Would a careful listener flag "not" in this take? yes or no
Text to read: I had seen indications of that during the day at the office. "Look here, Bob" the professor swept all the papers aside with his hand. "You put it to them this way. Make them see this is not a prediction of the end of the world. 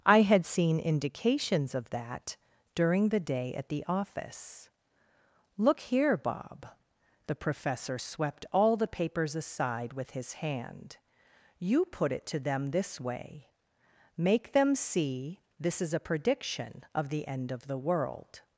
yes